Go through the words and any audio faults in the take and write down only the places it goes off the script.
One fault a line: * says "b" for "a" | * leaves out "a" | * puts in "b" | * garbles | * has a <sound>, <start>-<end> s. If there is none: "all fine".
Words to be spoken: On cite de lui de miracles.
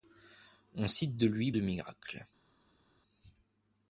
all fine